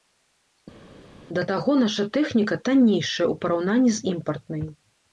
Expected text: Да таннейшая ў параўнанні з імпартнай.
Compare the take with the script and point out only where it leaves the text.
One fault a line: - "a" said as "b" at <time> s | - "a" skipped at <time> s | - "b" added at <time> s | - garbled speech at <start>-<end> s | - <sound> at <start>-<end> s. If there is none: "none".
- "таго наша тэхніка" added at 1.5 s